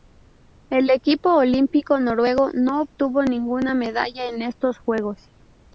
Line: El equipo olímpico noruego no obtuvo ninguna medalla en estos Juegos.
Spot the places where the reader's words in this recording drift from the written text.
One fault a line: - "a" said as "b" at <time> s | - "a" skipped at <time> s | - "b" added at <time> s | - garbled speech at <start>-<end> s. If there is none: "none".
none